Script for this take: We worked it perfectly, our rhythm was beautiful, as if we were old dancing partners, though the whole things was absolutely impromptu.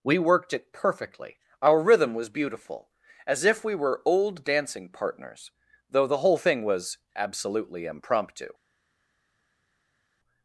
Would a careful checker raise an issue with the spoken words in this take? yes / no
yes